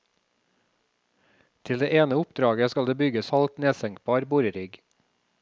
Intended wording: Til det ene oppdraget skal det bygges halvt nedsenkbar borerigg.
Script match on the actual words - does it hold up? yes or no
yes